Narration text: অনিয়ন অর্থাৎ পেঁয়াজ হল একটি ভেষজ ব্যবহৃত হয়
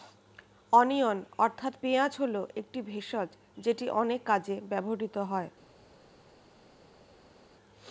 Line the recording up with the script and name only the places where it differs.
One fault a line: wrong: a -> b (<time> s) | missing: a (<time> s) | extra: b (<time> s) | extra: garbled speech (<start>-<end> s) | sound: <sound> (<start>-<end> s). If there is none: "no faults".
extra: যেটি অনেক কাজে (3.6 s)